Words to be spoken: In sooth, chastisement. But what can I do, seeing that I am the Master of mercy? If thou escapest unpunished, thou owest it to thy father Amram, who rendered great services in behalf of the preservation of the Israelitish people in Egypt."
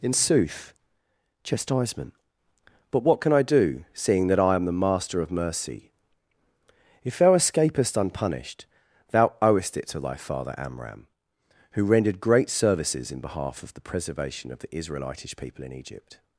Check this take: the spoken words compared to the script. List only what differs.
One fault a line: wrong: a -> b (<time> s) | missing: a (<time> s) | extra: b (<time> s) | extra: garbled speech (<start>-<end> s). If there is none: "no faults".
no faults